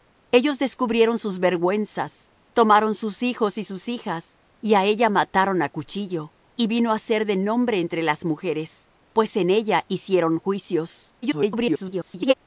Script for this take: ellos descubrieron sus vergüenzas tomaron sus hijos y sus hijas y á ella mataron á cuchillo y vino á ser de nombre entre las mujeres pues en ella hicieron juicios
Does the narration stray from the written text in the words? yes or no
yes